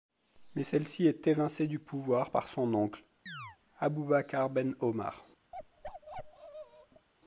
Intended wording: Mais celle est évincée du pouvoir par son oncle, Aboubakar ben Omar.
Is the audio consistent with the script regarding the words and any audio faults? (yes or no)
no